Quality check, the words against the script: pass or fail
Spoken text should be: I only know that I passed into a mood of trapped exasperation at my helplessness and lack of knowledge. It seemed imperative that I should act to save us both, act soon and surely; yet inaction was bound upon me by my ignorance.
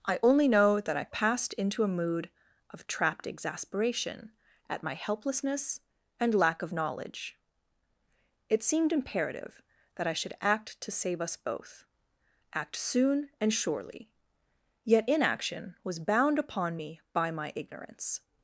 pass